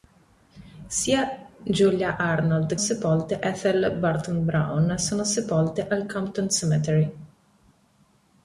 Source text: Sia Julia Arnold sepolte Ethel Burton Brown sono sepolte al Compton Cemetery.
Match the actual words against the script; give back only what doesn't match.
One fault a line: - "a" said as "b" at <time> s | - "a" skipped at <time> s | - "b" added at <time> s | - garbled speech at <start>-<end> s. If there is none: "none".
none